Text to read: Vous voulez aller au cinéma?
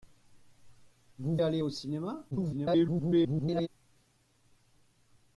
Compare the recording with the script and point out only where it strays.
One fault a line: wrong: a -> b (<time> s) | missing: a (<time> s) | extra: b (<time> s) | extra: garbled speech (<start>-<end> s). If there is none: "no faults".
missing: voulez (1.4 s)
extra: garbled speech (2.3-3.7 s)